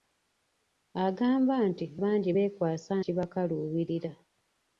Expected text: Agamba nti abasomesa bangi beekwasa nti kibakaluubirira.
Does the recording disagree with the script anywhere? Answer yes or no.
yes